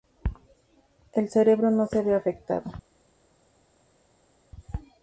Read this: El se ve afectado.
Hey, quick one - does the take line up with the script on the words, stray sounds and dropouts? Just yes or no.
no